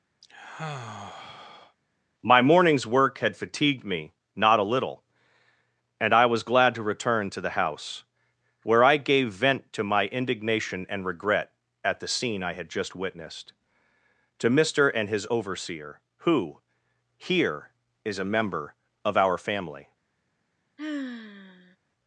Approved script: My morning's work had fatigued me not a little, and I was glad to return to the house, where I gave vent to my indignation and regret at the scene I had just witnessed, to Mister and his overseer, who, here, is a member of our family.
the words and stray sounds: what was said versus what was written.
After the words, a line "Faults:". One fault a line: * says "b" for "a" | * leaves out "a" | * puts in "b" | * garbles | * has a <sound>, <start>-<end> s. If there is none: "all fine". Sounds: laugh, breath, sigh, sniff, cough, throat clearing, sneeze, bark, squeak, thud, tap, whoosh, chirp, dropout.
My morning's work had fatigued me not a little, and I was glad to return to the house, where I gave vent to my indignation and regret at the scene I had just witnessed, to Mister and his overseer, who, here, is a member of our family.
Faults:
* has a sigh, 0.2-1.8 s
* has a sigh, 20.8-21.8 s